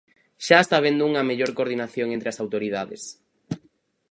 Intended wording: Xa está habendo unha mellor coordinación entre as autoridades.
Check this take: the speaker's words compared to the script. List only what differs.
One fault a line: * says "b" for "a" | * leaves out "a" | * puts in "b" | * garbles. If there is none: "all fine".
all fine